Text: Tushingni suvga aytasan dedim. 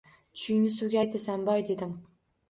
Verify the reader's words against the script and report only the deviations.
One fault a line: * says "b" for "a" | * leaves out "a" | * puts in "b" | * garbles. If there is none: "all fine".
* puts in "boy"